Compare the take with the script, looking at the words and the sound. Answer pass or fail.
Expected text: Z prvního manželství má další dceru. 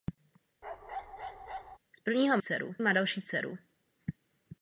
fail